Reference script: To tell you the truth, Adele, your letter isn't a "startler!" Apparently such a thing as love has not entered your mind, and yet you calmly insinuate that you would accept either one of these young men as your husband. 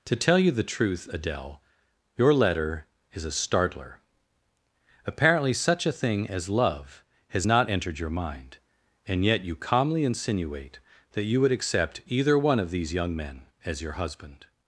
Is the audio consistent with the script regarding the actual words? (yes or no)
no